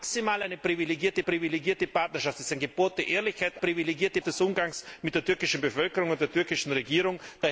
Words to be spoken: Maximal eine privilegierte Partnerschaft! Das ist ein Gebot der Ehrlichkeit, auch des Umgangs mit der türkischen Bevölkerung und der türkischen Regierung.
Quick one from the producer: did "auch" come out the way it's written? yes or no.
no